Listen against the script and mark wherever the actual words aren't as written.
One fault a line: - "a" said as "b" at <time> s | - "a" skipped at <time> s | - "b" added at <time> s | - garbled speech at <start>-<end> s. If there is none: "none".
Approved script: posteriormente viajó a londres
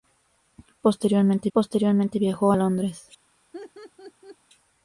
- "posteriormente" added at 1.5 s